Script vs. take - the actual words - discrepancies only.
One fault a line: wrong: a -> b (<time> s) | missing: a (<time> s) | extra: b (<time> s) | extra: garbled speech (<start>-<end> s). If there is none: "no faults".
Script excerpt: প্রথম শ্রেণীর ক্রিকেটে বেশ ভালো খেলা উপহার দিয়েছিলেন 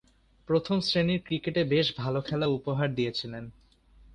no faults